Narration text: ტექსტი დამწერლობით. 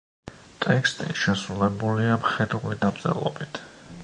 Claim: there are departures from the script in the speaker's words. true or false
true